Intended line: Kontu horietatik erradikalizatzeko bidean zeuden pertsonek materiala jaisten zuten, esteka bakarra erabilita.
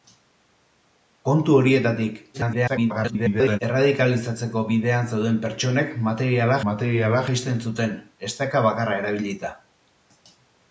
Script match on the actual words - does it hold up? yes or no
no